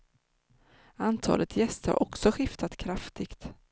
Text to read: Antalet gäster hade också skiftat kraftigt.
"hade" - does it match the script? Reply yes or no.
no